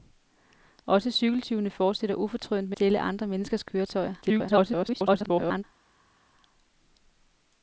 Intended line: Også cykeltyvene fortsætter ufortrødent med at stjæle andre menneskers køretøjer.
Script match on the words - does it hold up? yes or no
no